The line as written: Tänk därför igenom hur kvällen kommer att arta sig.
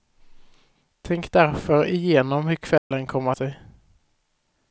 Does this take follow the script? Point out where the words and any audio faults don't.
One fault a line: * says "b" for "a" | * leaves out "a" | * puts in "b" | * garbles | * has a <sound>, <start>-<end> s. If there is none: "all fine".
* has a dropout, 2.8-2.9 s
* leaves out "att arta"